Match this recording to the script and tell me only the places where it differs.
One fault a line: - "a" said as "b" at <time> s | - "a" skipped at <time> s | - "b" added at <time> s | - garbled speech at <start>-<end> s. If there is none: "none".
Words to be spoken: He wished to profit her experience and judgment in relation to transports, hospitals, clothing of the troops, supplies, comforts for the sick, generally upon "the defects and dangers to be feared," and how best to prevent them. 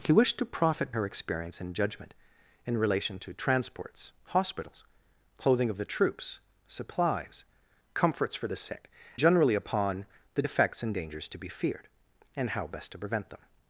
none